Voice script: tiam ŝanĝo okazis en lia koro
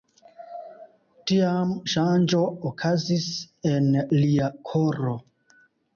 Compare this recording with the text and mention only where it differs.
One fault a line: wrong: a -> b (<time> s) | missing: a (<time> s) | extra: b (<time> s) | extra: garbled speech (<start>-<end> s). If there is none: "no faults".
no faults